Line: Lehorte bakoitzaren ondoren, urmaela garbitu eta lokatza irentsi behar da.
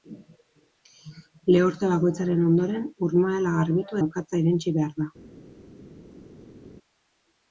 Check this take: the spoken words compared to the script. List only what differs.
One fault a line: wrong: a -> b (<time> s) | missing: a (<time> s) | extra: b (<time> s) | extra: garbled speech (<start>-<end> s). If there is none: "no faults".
missing: eta (4.0 s)